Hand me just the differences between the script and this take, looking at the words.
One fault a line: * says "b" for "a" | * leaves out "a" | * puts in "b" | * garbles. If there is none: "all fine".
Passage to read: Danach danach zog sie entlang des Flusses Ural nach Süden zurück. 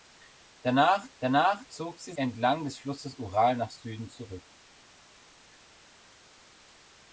all fine